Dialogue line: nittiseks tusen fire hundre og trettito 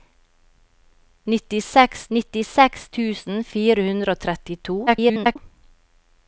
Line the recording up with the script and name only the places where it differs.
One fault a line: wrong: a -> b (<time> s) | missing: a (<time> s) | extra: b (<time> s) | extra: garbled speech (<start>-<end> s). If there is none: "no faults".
extra: nittiseks (2.2 s)
extra: garbled speech (4.9-5.4 s)